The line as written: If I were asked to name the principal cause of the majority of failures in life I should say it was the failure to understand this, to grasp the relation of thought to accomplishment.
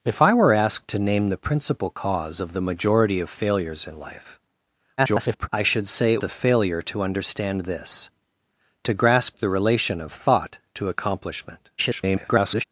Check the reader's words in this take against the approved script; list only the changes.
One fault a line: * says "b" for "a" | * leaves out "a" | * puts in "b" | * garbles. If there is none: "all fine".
* garbles
* leaves out "was"
* garbles